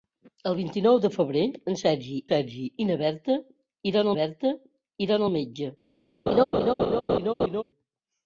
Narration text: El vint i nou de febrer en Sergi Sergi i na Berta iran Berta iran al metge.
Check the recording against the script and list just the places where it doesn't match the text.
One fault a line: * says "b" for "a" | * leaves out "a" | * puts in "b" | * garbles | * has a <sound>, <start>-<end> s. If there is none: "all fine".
* has a laugh, 6.3-7.6 s